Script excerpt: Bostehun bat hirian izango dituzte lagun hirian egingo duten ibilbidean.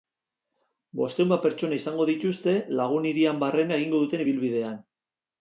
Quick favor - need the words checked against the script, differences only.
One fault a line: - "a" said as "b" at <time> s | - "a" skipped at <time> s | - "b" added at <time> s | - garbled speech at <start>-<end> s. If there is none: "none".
- "hirian" said as "pertsona" at 1.4 s
- "barrena" added at 3.5 s